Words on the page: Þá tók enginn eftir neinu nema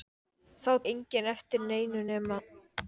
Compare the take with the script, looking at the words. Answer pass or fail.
fail